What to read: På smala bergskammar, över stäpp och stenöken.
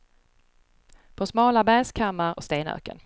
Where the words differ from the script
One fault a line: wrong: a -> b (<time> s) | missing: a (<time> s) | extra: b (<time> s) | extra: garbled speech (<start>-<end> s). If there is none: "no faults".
missing: över stäpp (2.4 s)